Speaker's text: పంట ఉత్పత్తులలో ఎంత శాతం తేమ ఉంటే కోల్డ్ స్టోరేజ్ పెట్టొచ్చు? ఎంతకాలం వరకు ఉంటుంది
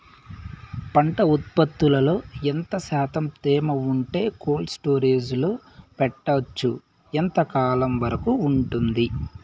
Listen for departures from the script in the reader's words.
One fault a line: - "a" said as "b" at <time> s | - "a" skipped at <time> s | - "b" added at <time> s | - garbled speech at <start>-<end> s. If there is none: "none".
- "లో" added at 5.4 s